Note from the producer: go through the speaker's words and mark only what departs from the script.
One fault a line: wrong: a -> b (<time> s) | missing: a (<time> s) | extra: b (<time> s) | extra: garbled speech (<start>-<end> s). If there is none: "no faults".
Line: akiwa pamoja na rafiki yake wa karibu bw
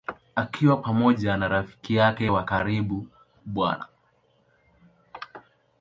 no faults